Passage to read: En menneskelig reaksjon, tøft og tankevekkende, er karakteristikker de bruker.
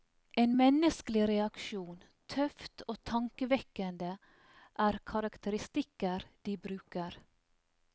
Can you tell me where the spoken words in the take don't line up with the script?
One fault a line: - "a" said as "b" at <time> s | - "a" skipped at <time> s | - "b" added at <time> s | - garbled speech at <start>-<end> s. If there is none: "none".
none